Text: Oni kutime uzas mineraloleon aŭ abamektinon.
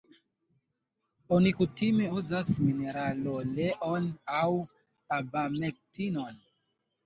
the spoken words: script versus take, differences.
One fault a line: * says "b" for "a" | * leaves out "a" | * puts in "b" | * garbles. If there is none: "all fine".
all fine